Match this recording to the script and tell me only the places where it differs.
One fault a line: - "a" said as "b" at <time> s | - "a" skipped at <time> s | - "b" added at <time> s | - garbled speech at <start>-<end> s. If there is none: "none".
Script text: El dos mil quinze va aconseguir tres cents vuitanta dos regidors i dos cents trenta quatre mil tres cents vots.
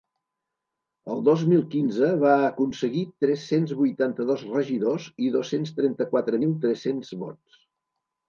none